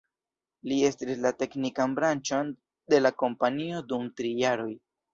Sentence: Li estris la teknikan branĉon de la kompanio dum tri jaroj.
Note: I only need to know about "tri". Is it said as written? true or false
true